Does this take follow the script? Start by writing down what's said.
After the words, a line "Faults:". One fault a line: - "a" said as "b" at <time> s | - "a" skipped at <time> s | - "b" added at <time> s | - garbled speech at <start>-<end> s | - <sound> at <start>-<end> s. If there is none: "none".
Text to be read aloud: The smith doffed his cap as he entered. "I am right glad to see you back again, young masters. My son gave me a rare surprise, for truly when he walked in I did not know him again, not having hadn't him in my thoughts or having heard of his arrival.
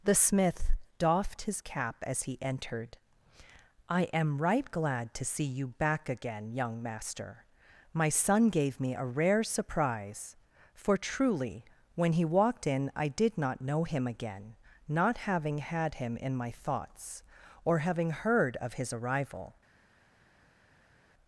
The smith doffed his cap as he entered. "I am right glad to see you back again, young master. My son gave me a rare surprise, for truly when he walked in I did not know him again, not having had him in my thoughts or having heard of his arrival.
Faults:
- "masters" said as "master" at 6.8 s
- "hadn't" said as "had" at 15.6 s